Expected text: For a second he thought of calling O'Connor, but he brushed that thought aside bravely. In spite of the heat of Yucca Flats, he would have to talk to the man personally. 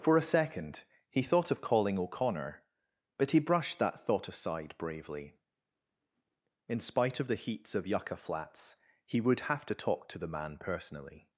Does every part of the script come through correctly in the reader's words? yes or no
no